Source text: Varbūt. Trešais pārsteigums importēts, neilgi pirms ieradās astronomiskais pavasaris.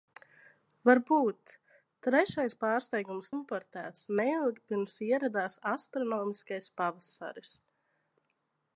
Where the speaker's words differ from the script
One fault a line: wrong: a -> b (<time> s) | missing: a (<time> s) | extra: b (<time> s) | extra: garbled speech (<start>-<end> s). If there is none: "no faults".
no faults